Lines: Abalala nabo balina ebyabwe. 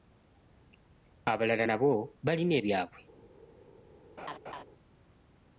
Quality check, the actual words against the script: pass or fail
pass